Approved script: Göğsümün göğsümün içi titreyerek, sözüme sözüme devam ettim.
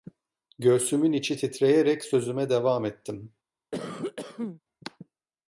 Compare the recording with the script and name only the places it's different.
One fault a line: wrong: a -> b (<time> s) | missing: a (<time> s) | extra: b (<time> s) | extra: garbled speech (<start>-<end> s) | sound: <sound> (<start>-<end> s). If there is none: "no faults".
missing: göğsümün (1.1 s)
missing: sözüme (2.5 s)
sound: cough (3.7-4.6 s)